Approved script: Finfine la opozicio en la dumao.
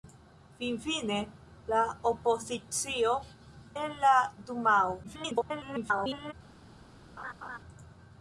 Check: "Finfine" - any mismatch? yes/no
no